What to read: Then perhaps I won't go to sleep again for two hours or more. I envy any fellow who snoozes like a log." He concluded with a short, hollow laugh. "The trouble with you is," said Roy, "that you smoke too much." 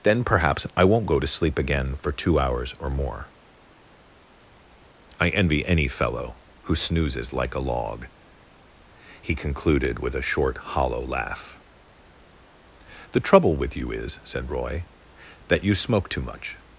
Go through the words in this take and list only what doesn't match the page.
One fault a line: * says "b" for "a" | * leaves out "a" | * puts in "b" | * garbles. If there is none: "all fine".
all fine